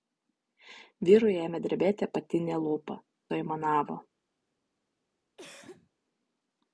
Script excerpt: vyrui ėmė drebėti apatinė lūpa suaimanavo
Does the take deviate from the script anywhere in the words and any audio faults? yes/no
yes